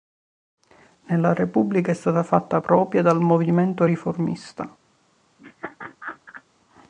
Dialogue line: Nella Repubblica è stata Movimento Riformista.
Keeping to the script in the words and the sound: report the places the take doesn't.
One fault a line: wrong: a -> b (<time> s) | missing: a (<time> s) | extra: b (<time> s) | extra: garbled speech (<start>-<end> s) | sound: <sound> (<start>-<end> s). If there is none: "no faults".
extra: fatta propria dal (2.2 s)
sound: laugh (5.4-6.4 s)